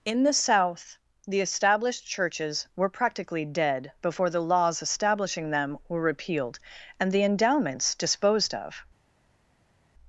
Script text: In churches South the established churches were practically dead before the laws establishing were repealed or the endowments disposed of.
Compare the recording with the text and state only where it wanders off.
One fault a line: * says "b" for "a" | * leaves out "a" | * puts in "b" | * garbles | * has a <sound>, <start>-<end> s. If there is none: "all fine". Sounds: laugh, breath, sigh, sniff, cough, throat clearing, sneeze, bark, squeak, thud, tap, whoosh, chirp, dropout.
* says "the" for "churches"
* puts in "them"
* says "and" for "or"